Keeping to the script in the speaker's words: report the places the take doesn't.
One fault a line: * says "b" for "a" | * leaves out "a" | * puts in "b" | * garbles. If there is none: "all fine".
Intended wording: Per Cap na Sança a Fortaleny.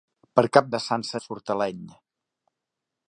all fine